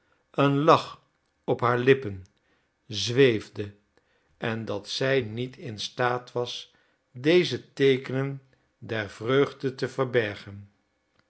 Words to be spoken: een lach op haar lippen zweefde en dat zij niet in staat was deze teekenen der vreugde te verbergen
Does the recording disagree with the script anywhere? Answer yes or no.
no